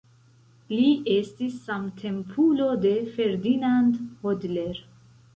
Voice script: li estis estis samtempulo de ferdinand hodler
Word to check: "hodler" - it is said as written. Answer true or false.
true